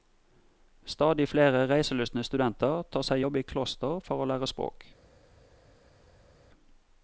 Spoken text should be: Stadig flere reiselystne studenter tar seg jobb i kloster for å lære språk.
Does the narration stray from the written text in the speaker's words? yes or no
no